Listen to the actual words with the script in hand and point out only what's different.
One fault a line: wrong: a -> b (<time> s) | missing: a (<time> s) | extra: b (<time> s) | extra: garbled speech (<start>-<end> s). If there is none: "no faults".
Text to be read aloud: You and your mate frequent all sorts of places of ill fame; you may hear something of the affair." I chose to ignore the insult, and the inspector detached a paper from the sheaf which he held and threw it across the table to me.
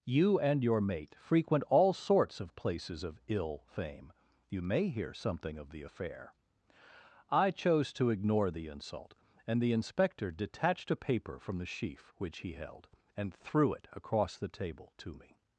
no faults